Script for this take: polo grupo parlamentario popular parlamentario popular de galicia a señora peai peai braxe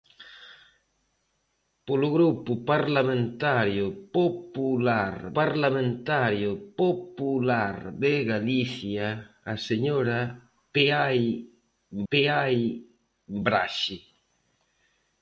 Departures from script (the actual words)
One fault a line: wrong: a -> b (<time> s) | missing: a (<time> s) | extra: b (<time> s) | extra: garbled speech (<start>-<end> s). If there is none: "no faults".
no faults